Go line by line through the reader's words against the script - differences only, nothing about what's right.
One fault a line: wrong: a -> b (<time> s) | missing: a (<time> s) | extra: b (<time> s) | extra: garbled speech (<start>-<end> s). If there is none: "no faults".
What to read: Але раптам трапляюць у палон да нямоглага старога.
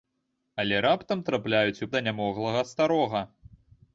missing: палон (1.9 s)